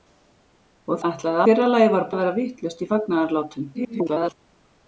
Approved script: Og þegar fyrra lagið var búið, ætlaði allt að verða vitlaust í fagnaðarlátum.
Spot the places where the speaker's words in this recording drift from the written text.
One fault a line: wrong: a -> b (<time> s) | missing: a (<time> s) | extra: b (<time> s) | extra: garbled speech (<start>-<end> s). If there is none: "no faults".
wrong: þegar -> ætlaði (1.1 s)
missing: búið ætlaði allt (2.1 s)
extra: garbled speech (3.7-4.3 s)